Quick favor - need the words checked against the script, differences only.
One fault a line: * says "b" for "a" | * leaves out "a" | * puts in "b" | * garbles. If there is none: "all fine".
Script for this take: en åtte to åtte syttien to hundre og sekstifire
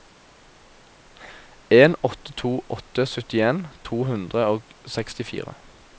all fine